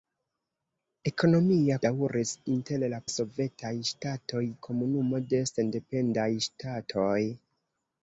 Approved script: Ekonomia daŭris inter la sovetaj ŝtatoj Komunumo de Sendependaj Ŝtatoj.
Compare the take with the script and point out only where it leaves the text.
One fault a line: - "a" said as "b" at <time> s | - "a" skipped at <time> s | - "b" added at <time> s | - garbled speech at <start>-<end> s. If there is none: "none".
none